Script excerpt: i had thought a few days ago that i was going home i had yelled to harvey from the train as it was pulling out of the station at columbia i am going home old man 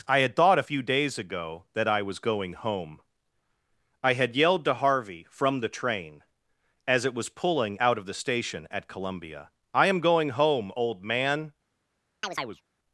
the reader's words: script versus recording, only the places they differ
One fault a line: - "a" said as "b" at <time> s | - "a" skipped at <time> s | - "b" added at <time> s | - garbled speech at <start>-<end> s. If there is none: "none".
none